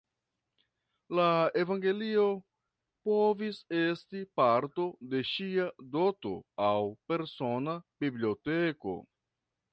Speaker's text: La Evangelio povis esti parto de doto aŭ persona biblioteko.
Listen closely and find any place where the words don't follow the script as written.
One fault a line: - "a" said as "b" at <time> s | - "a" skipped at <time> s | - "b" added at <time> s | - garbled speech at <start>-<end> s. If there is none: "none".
- "ŝia" added at 5.3 s